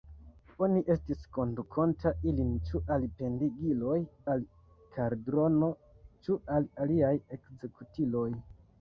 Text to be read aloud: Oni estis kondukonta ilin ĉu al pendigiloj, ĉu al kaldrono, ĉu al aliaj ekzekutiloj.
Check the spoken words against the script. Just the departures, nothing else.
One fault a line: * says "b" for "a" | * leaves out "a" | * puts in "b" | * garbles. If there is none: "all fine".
* leaves out "ĉu"